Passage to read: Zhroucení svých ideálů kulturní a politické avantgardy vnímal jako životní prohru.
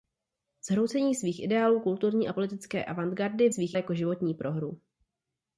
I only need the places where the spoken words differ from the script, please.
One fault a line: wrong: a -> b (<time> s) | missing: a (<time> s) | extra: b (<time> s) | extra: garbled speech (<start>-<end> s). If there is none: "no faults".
wrong: vnímal -> svých (3.5 s)